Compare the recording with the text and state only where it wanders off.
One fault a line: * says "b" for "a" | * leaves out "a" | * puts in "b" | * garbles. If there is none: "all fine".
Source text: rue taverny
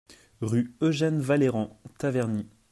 * puts in "eugène vallerand"